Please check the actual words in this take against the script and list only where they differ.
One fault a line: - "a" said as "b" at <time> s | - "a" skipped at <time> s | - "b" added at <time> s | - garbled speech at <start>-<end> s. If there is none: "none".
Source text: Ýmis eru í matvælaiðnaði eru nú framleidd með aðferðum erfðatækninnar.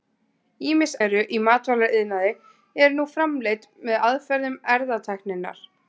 none